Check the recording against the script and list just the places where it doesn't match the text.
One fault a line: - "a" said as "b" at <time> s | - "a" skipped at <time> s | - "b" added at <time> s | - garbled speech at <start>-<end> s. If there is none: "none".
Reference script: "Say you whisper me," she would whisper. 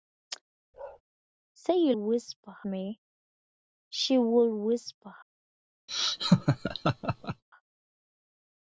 none